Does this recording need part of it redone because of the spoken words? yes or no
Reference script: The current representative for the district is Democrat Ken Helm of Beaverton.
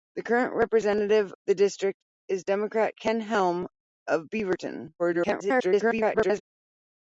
yes